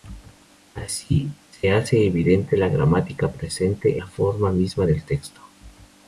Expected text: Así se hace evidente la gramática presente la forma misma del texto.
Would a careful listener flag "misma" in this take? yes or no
no